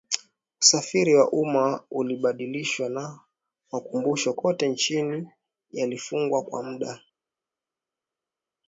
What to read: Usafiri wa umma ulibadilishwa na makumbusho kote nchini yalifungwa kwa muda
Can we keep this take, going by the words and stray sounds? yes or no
yes